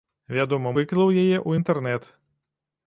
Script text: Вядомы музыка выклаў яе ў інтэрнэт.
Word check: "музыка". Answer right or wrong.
wrong